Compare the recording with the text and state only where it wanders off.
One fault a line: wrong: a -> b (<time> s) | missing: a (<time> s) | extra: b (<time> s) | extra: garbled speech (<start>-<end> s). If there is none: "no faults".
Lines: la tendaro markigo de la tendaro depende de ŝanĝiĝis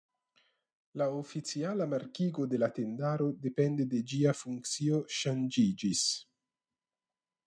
wrong: tendaro -> oficiala (1.2 s)
extra: ĝia funkcio (4.1 s)